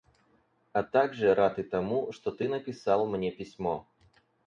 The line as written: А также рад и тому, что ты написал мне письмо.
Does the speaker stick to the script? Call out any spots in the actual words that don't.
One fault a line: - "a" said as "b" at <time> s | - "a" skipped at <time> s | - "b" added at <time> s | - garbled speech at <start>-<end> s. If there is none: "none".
none